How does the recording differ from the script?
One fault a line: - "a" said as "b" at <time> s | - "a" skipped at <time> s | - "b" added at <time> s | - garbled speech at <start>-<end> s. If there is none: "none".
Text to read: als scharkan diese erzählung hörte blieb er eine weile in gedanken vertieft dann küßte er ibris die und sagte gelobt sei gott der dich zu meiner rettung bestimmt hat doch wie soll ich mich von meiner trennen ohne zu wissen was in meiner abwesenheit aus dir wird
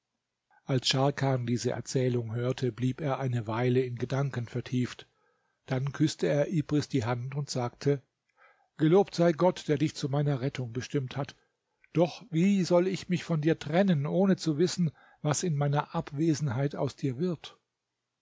- "hand" added at 7.0 s
- "meiner" said as "dir" at 13.4 s